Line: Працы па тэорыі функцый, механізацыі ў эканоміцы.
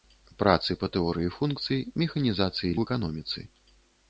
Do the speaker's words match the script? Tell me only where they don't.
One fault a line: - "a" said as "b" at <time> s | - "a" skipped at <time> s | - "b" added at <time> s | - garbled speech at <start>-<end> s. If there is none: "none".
none